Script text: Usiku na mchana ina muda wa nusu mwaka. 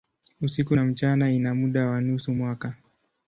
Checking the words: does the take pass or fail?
pass